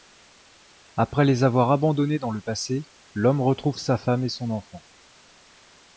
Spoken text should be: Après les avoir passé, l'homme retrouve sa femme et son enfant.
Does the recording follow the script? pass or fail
fail